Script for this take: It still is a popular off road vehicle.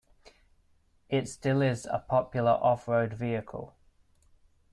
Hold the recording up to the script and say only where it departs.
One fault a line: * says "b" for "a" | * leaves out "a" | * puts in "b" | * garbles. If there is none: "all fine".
all fine